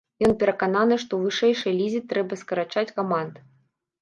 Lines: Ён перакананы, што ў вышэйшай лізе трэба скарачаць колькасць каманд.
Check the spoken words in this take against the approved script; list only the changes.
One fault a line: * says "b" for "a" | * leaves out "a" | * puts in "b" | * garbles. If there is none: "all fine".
* leaves out "колькасць"